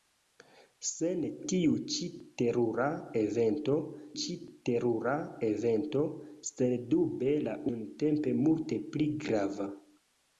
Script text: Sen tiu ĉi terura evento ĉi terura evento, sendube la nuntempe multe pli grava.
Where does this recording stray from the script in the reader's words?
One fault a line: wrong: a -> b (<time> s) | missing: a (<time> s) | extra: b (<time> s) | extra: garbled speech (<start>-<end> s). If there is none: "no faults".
no faults